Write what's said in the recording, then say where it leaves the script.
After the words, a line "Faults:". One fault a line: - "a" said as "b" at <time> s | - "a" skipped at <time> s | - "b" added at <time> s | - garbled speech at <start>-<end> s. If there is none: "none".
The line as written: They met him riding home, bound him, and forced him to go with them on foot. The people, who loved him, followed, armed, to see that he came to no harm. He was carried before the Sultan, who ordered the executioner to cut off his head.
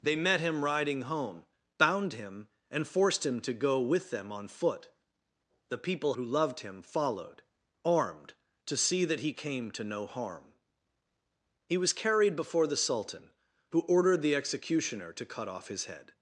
They met him riding home, bound him, and forced him to go with them on foot. The people, who loved him, followed, armed, to see that he came to no harm. He was carried before the Sultan, who ordered the executioner to cut off his head.
Faults:
none